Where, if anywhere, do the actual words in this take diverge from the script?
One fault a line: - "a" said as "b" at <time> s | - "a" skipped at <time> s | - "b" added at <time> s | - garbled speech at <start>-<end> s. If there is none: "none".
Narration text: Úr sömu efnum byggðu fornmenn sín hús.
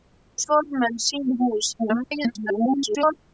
- "sömu efnum byggðu" skipped at 0.4 s
- garbled speech at 1.8-3.2 s